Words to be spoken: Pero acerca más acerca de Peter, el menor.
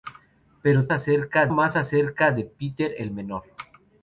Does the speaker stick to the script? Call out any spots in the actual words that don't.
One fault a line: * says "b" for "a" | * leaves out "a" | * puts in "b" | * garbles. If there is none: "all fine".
all fine